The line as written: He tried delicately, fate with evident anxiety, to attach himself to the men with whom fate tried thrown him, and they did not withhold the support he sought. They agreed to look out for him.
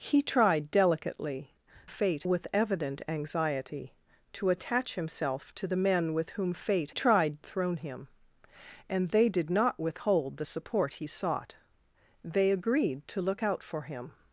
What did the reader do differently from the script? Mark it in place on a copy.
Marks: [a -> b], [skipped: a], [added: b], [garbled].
He tried delicately, fate with evident anxiety, to attach himself to the men with whom fate tried thrown him, and they did not withhold the support he sought. They agreed to look out for him.